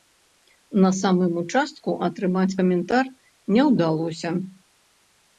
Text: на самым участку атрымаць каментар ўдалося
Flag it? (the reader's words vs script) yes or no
yes